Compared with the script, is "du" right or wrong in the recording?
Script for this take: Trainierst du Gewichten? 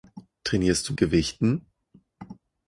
right